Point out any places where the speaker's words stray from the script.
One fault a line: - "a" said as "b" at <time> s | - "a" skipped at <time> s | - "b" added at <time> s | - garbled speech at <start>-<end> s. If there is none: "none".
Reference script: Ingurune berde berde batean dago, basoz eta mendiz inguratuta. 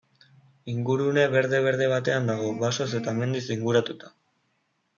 none